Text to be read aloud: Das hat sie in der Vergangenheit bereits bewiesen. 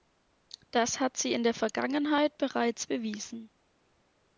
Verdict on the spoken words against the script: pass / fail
pass